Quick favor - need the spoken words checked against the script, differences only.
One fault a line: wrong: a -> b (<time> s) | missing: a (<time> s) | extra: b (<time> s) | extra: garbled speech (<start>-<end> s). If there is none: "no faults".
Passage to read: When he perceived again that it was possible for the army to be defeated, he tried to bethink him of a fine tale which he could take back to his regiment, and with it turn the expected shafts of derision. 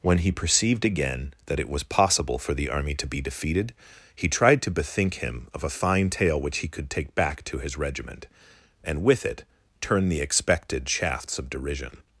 no faults